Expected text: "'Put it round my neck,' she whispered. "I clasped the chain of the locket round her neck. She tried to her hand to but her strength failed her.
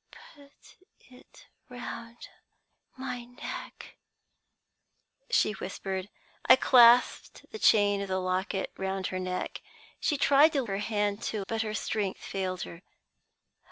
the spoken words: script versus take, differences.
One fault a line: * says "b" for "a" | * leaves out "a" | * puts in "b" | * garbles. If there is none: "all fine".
all fine